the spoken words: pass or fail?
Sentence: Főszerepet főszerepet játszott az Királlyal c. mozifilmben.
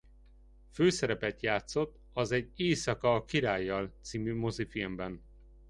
fail